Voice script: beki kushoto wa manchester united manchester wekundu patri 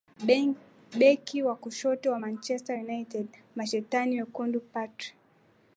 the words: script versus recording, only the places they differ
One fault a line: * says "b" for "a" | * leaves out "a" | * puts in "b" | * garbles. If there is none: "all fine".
* puts in "wa"
* says "mashetani" for "manchester"